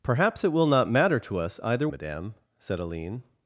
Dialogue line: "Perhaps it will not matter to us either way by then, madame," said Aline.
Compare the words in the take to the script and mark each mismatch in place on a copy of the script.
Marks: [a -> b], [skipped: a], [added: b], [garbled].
"Perhaps it will not matter to us either [skipped: way by then,] madame," said Aline.